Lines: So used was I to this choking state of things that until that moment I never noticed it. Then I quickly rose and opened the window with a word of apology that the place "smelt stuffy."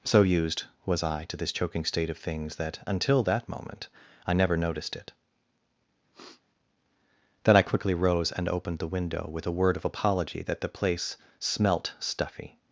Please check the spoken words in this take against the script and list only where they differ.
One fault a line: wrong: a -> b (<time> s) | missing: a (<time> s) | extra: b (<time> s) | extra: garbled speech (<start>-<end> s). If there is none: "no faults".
no faults